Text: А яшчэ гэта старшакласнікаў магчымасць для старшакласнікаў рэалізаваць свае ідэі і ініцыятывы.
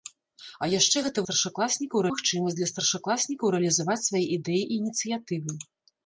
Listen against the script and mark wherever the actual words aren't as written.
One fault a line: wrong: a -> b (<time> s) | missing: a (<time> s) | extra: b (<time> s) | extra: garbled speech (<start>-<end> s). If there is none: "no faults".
no faults